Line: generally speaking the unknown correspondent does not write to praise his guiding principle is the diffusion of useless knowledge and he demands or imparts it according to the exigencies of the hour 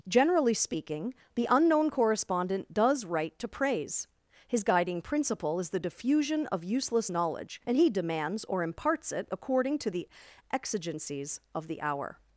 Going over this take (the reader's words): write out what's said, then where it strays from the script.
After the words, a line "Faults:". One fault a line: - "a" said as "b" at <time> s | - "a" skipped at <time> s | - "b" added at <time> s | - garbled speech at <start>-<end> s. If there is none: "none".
generally speaking the unknown correspondent does write to praise his guiding principle is the diffusion of useless knowledge and he demands or imparts it according to the exigencies of the hour
Faults:
- "not" skipped at 3.0 s